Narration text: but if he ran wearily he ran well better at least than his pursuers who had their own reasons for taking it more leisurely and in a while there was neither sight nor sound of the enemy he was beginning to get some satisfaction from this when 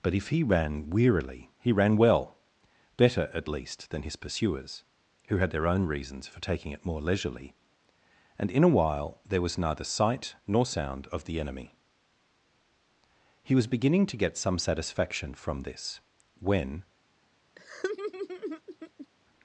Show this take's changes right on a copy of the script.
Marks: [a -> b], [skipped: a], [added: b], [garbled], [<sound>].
but if he ran wearily he ran well better at least than his pursuers who had their own reasons for taking it more leisurely and in a while there was neither sight nor sound of the enemy he was beginning to get some satisfaction from this when [laugh]